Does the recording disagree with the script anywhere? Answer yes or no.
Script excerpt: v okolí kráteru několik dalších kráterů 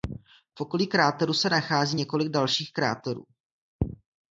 yes